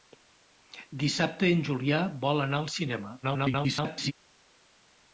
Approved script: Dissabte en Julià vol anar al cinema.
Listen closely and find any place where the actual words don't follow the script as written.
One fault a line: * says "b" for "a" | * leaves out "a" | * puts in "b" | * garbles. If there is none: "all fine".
* garbles